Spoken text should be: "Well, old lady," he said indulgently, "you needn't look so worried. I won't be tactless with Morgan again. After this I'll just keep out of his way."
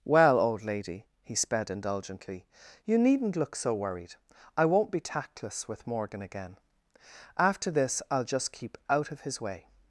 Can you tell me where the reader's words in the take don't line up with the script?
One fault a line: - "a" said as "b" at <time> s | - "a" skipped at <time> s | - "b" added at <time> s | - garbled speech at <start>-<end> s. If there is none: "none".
- "said" said as "sped" at 1.4 s